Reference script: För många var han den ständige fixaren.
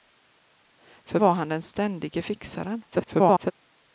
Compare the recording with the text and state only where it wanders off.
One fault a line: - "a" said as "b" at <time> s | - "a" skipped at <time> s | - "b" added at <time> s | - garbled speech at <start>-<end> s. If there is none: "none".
- "många" skipped at 1.2 s
- garbled speech at 2.9-3.5 s